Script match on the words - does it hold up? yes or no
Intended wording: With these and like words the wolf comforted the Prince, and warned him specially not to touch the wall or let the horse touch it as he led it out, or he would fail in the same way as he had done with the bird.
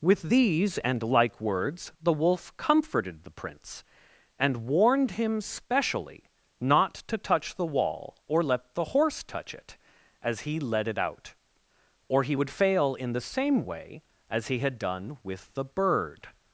yes